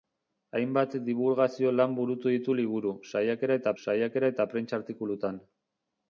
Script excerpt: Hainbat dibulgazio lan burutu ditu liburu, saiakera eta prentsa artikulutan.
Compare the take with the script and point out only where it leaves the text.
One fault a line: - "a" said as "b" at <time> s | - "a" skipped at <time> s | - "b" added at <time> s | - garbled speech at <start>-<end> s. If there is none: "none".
- "saiakera eta" added at 3.8 s